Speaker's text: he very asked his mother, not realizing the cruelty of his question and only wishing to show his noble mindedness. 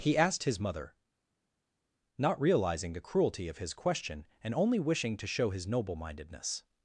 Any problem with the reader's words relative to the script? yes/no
yes